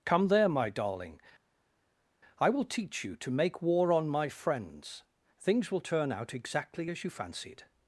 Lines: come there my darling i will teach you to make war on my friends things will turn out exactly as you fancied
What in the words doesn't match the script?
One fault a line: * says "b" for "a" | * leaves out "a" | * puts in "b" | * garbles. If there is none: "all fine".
all fine